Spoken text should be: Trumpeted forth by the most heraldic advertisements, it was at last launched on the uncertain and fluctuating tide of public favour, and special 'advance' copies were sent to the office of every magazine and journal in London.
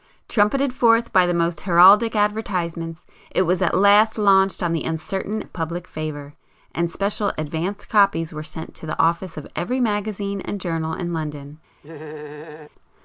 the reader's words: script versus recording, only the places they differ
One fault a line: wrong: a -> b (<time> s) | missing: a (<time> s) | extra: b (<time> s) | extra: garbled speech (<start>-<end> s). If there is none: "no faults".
missing: and fluctuating tide (5.4 s)